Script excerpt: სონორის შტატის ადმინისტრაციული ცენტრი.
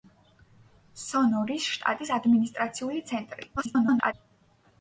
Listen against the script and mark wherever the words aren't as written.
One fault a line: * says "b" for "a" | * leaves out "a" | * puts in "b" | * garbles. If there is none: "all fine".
* garbles